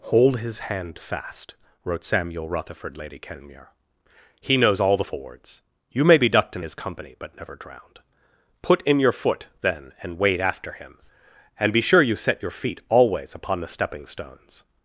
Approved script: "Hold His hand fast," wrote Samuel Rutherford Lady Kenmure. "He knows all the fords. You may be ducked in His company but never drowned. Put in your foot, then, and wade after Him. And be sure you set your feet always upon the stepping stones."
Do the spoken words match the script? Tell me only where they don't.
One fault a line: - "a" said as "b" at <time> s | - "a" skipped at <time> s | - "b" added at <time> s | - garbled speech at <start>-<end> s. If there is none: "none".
none